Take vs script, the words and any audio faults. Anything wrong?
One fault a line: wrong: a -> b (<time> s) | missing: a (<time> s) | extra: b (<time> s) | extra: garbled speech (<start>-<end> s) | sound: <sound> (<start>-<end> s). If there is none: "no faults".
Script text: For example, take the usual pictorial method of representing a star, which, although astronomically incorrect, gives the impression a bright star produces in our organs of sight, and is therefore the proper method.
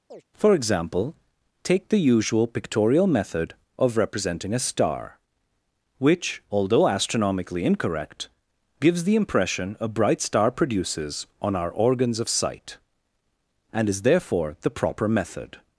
sound: chirp (0.1-0.2 s)
wrong: in -> on (11.4 s)